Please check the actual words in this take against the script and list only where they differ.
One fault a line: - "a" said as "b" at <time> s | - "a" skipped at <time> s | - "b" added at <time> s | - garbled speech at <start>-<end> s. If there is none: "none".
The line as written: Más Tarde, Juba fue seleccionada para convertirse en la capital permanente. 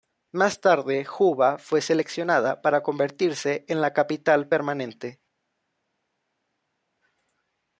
none